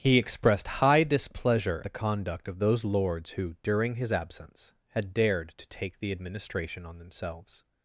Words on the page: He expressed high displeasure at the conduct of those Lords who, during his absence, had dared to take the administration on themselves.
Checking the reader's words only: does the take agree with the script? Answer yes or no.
no